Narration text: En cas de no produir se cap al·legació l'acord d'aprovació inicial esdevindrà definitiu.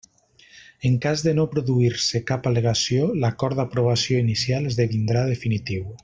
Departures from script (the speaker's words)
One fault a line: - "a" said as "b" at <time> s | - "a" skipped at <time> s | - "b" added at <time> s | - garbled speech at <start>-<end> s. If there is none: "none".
none